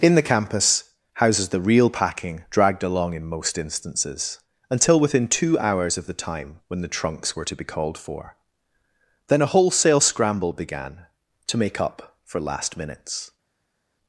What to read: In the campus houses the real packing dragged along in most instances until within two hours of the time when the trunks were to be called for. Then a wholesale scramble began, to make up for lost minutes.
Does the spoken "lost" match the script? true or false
false